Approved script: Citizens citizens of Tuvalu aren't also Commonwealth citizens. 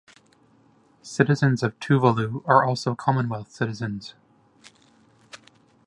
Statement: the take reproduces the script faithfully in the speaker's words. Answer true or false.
false